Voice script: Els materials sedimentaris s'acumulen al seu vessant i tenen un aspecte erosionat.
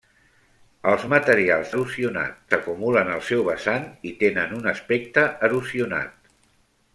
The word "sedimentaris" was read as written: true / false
false